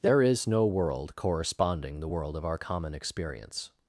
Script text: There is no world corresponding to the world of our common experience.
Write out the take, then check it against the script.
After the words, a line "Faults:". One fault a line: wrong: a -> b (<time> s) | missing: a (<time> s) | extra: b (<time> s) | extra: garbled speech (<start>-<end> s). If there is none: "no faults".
There is no world corresponding the world of our common experience.
Faults:
missing: to (2.0 s)